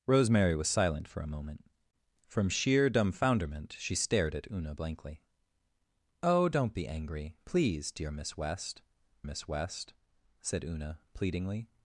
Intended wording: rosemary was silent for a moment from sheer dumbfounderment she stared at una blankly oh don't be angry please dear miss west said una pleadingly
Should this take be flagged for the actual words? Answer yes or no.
yes